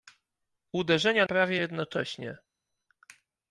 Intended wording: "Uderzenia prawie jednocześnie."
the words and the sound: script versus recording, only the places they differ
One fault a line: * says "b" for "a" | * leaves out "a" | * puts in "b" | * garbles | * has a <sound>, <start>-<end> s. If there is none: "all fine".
all fine